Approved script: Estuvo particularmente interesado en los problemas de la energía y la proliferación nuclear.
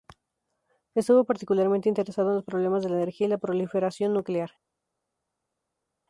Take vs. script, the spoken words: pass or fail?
pass